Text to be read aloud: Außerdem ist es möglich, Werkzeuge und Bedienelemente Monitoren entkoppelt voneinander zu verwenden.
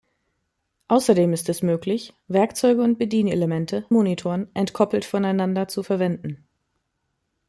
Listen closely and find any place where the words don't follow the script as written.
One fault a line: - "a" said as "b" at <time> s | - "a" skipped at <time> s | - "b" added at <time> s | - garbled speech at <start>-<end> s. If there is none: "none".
none